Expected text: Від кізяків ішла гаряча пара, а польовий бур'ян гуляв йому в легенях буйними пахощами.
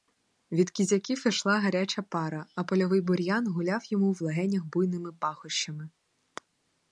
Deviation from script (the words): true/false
false